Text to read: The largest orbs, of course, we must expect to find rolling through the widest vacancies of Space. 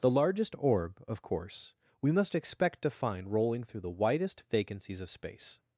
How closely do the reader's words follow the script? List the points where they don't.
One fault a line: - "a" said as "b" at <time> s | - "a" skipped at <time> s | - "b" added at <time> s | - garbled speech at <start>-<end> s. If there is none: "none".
- "orbs" said as "orb" at 0.6 s